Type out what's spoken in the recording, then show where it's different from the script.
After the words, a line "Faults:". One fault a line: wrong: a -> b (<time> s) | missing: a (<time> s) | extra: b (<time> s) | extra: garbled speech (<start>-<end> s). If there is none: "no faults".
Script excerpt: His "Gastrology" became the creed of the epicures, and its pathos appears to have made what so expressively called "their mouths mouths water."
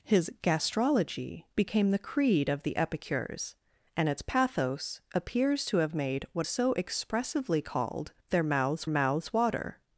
His "Gastrology" became the creed of the epicures, and its pathos appears to have made what so expressively called "their mouths mouths water."
Faults:
no faults